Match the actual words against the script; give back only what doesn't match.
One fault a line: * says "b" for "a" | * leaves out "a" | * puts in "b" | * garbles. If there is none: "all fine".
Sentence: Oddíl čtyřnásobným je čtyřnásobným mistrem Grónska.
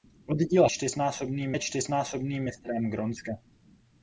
all fine